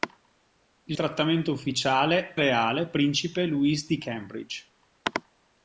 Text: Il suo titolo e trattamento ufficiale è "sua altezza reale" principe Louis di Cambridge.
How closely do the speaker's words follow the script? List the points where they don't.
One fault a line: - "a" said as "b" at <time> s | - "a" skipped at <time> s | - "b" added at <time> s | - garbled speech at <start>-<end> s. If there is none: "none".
- "suo titolo e" skipped at 1.0 s
- "è sua altezza" skipped at 2.4 s